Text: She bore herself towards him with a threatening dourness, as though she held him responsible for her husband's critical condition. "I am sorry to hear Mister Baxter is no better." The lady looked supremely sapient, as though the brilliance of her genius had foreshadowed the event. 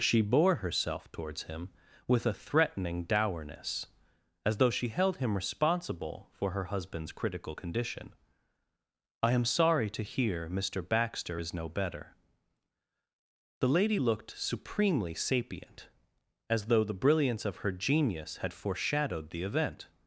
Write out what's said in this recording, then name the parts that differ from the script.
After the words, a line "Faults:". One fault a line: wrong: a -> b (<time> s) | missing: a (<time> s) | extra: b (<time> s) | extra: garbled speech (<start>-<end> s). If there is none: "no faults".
She bore herself towards him with a threatening dourness, as though she held him responsible for her husband's critical condition. "I am sorry to hear Mister Baxter is no better." The lady looked supremely sapient, as though the brilliance of her genius had foreshadowed the event.
Faults:
no faults